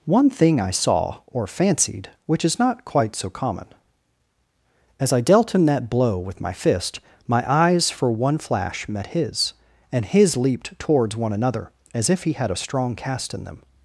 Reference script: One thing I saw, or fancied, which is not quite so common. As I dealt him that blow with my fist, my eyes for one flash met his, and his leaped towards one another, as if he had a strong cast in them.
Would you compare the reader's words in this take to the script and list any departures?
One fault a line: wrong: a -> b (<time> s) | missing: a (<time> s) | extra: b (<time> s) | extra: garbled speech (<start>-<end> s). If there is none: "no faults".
no faults